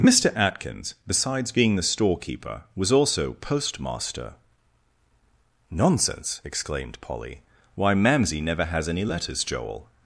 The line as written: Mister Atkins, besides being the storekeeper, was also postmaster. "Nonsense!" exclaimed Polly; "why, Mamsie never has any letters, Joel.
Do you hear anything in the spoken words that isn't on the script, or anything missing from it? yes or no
no